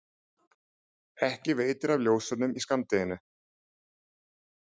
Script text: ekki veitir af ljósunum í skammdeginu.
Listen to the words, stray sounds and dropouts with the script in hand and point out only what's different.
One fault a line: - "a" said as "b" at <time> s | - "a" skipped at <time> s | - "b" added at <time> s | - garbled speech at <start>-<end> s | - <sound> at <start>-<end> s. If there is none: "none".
none